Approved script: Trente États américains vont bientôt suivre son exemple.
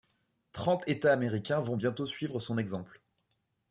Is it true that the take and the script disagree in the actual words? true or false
false